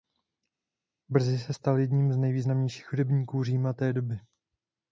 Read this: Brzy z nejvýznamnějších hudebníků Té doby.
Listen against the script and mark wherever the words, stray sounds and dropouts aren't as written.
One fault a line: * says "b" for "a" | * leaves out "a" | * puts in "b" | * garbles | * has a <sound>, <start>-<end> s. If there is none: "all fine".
* puts in "se stal jedním"
* puts in "Říma"